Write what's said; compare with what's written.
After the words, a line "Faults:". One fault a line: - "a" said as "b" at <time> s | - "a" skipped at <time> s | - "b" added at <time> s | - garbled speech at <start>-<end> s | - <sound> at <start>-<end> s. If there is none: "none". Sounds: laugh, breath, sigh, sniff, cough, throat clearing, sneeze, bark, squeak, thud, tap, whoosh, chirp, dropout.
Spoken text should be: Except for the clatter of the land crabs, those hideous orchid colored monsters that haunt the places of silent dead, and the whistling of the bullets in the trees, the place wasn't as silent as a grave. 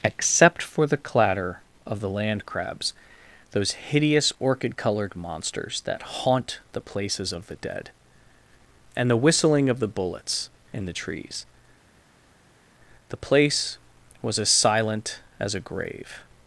Except for the clatter of the land crabs, those hideous orchid colored monsters that haunt the places of the dead, and the whistling of the bullets in the trees, the place was as silent as a grave.
Faults:
- "silent" said as "the" at 7.5 s
- "wasn't" said as "was" at 14.2 s